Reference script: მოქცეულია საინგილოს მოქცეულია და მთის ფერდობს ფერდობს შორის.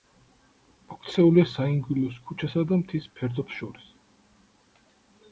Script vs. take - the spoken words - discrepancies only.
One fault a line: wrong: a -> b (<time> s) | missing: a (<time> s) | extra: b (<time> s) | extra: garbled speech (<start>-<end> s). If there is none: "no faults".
wrong: მოქცეულია -> ქუჩასა (2.3 s)
missing: ფერდობს (3.6 s)